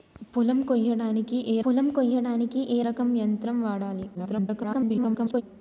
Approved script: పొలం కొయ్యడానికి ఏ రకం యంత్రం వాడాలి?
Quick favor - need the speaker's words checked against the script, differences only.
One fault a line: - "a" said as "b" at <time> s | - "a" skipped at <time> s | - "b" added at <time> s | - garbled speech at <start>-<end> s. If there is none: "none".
- "పొలం కొయ్యడానికి ఏ" added at 1.6 s
- garbled speech at 4.1-5.4 s